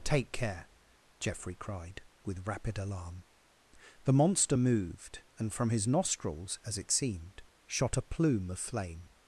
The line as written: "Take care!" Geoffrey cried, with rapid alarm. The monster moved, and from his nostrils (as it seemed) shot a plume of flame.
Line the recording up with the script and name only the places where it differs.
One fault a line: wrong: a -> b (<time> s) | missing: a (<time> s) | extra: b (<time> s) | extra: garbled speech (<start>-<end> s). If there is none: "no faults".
no faults